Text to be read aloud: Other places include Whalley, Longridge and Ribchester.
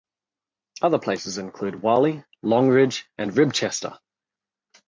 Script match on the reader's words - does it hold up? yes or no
yes